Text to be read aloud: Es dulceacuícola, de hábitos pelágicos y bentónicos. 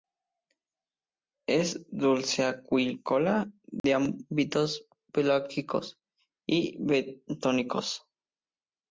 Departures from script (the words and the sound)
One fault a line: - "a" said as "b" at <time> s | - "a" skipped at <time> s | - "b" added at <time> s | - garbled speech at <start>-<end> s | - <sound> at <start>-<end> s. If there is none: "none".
- dropout at 3.8-3.8 s